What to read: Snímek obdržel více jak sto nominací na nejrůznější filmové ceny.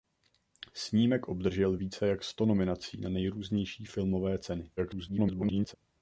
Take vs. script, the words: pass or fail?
fail